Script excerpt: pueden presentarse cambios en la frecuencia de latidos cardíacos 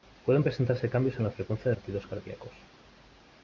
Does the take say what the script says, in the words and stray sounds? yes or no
yes